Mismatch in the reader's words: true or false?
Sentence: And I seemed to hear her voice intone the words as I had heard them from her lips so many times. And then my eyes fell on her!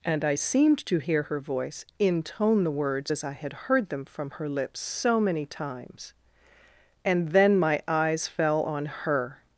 false